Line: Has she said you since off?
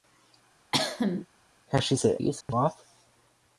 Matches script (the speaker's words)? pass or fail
pass